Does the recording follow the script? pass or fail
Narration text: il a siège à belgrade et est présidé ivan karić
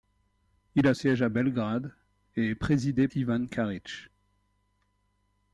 pass